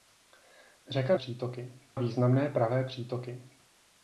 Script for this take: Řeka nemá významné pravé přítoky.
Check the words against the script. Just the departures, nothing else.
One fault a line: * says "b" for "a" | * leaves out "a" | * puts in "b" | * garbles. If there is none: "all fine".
* says "přítoky" for "nemá"